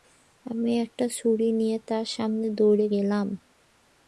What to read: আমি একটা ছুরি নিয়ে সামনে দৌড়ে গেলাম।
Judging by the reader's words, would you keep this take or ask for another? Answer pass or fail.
fail